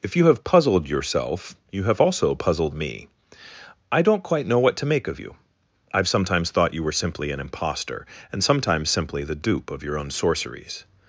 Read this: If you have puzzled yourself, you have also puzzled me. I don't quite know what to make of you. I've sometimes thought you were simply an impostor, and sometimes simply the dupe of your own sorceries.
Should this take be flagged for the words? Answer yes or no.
no